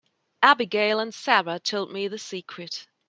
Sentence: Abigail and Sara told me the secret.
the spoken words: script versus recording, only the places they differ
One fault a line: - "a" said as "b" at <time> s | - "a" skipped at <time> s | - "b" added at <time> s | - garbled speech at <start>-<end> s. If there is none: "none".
none